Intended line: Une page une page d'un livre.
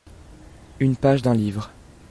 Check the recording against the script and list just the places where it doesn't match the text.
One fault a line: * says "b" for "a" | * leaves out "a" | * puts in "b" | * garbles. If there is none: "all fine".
* leaves out "une page"